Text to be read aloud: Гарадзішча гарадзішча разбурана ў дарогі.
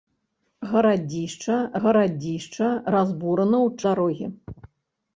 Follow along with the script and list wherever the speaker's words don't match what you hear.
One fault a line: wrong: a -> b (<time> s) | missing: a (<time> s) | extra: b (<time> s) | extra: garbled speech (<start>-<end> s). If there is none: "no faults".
no faults